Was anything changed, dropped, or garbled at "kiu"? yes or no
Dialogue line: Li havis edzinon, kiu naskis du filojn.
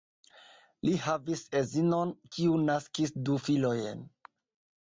no